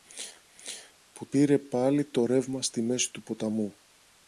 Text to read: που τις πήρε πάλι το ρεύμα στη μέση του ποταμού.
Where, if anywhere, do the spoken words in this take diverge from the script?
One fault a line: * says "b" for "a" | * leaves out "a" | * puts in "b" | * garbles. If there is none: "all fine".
* leaves out "τις"